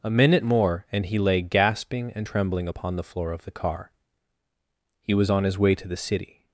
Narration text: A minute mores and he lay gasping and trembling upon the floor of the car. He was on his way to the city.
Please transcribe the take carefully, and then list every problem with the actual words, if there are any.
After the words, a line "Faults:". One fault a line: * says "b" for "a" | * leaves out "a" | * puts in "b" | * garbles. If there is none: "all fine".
A minute more and he lay gasping and trembling upon the floor of the car. He was on his way to the city.
Faults:
* says "more" for "mores"